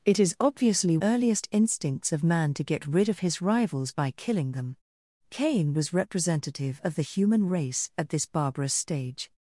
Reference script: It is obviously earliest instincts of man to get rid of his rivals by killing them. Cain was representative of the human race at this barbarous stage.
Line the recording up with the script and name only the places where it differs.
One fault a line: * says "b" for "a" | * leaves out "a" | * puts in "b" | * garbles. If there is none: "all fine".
all fine